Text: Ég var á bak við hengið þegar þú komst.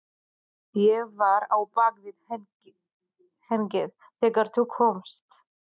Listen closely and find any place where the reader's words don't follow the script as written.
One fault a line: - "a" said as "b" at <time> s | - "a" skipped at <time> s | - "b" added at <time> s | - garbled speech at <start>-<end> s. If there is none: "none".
none